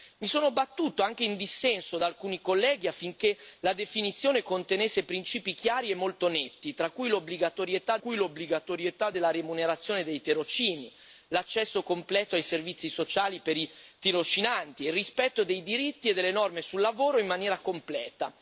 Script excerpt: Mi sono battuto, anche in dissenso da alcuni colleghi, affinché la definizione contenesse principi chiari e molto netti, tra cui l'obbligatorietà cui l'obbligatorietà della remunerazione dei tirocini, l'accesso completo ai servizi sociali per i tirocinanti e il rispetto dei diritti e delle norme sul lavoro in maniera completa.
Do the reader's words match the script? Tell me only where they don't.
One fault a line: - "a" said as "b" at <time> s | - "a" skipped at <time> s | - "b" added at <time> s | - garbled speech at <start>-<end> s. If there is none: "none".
none